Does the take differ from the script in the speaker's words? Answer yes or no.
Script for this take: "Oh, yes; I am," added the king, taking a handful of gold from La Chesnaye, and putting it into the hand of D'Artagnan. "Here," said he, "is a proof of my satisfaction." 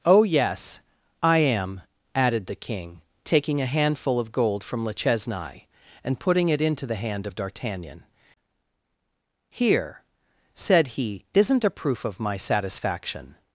yes